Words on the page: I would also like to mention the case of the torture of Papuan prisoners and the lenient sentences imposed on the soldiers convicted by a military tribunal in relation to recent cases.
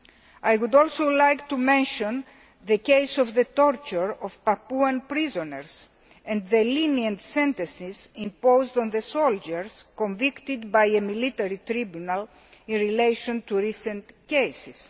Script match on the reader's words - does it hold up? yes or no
yes